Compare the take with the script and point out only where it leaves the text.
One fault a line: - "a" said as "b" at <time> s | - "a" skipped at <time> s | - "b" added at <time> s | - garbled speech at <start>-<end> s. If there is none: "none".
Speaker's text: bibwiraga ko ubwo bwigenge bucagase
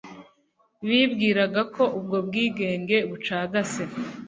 none